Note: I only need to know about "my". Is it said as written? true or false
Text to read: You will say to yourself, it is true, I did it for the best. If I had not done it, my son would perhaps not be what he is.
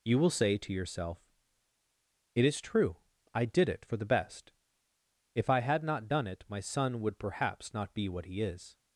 true